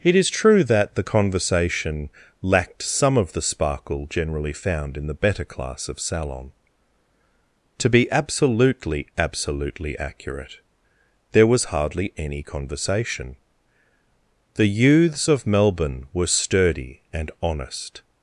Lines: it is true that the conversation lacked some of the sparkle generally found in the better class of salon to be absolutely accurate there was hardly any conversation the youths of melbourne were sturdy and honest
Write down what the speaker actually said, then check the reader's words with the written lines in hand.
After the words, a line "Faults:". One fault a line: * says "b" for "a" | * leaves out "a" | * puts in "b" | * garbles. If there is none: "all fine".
it is true that the conversation lacked some of the sparkle generally found in the better class of salon to be absolutely absolutely accurate there was hardly any conversation the youths of melbourne were sturdy and honest
Faults:
* puts in "absolutely"